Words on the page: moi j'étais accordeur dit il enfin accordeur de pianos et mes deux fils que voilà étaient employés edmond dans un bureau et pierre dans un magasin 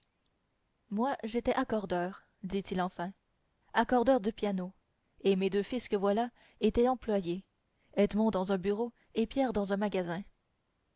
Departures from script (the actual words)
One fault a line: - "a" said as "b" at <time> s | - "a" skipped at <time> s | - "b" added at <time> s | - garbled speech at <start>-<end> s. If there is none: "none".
none